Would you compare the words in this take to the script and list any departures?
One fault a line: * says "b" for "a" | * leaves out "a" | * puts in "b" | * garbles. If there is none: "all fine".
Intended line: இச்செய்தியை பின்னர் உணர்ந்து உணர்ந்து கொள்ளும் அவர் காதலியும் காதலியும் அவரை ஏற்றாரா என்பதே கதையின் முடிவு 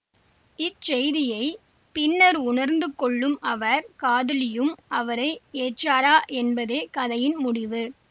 * leaves out "உணர்ந்து"
* leaves out "காதலியும்"